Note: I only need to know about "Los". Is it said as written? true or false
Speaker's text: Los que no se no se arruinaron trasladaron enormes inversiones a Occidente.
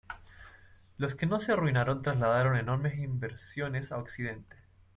true